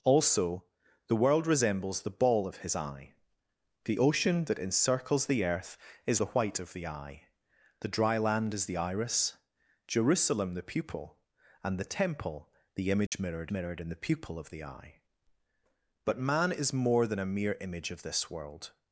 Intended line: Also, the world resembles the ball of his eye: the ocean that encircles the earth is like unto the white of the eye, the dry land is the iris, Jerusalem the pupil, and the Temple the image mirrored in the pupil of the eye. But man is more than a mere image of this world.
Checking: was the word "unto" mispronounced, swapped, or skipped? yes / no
yes